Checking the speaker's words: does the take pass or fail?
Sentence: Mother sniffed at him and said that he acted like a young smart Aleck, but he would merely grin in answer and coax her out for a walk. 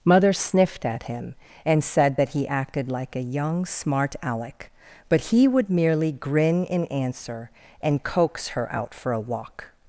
pass